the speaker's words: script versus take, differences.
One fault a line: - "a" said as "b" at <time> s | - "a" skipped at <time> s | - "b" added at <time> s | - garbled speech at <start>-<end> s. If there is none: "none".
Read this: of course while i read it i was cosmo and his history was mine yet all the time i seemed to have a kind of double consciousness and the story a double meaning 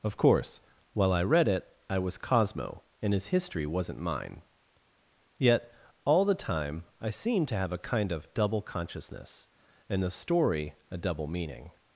- "was" said as "wasn't" at 3.6 s